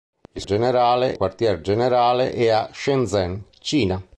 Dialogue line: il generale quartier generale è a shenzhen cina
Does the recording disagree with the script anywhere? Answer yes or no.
no